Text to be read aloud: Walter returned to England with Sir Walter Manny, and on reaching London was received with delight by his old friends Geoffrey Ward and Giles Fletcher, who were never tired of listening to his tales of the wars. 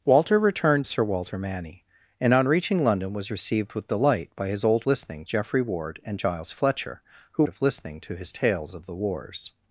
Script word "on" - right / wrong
right